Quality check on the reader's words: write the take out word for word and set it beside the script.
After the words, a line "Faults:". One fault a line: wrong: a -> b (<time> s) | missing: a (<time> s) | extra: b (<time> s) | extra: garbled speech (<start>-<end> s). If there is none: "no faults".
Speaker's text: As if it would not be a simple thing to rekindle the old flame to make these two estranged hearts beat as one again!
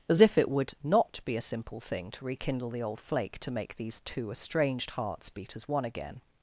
As if it would not be a simple thing to rekindle the old flake to make these two estranged hearts beat as one again!
Faults:
wrong: flame -> flake (3.0 s)